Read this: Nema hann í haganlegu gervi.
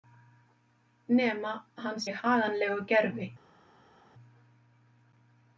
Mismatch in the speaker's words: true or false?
false